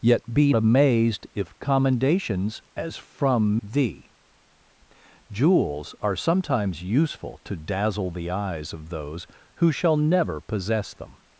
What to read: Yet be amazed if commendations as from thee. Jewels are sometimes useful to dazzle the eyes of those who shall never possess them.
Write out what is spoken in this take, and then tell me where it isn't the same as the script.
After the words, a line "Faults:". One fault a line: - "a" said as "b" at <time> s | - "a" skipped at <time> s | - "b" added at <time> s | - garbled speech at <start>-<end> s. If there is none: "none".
Yet be amazed if commendations as from thee. Jewels are sometimes useful to dazzle the eyes of those who shall never possess them.
Faults:
none